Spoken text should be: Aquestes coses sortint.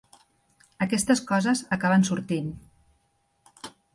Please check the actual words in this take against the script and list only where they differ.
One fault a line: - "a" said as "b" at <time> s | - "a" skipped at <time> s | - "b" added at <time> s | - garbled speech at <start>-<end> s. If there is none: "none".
- "acaben" added at 1.8 s